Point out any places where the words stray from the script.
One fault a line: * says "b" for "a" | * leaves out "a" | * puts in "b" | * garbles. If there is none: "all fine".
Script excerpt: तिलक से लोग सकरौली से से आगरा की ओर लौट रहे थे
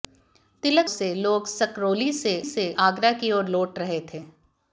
all fine